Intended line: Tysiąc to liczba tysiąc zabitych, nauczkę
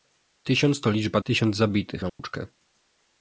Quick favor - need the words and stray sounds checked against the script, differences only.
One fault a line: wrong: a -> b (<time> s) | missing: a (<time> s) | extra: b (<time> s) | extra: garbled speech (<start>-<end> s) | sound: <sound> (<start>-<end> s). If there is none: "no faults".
sound: dropout (2.1-2.2 s)